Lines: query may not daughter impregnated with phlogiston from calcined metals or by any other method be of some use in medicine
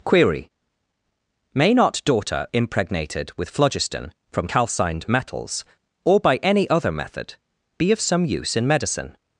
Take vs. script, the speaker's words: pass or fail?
pass